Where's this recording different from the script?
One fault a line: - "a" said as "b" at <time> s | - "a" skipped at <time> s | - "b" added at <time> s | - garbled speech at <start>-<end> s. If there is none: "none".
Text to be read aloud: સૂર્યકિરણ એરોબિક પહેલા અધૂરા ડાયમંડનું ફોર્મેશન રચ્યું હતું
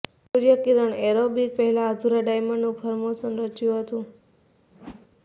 none